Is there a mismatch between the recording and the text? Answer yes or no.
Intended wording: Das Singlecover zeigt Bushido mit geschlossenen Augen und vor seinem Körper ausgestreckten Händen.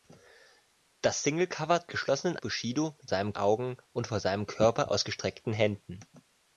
yes